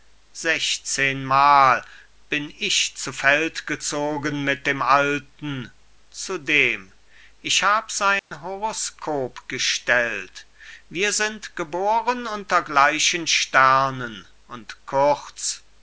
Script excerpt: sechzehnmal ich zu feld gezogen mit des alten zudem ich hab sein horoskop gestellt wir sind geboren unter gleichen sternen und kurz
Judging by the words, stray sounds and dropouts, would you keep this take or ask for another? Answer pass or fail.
fail